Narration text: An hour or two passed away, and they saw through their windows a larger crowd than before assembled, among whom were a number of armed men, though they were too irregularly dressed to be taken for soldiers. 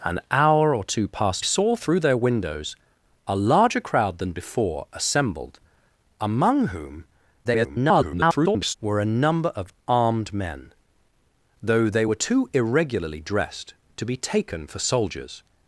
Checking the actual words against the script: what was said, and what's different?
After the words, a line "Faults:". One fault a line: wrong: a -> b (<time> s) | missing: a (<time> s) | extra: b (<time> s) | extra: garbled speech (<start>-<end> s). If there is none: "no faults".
An hour or two passed saw through their windows a larger crowd than before assembled, among whom [garbled] were a number of armed men, though they were too irregularly dressed to be taken for soldiers.
Faults:
missing: away and they (1.4 s)
extra: garbled speech (7.4-8.7 s)